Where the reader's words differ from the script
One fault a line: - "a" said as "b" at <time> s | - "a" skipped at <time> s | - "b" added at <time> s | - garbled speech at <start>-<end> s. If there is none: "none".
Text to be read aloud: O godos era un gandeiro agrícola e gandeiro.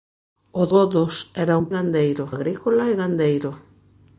none